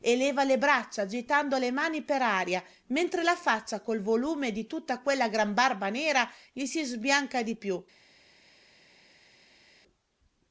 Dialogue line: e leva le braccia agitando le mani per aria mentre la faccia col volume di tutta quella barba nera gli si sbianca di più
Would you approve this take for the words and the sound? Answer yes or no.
no